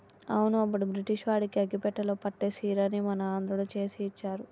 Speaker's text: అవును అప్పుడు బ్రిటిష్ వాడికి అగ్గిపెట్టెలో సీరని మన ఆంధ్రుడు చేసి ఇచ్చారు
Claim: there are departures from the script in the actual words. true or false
true